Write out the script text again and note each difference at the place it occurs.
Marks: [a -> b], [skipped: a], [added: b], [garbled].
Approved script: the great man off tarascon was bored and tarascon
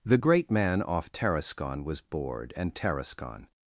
the great man off tarascon was bored and tarascon